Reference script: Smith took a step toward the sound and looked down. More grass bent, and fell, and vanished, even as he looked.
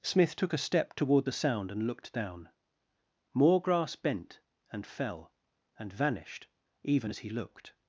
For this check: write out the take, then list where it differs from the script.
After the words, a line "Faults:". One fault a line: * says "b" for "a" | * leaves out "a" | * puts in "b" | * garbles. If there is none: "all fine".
Smith took a step toward the sound and looked down. More grass bent, and fell, and vanished, even as he looked.
Faults:
all fine